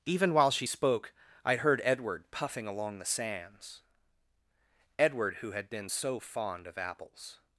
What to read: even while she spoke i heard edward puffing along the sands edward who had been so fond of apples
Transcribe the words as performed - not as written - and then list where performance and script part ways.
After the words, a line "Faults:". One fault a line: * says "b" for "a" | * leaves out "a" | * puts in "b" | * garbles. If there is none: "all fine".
even while she spoke i heard edward puffing along the sands edward who had been so fond of apples
Faults:
all fine